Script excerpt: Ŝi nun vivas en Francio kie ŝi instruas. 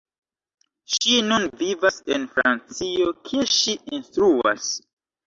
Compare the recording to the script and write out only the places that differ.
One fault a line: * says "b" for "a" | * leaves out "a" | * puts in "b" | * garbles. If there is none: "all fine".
all fine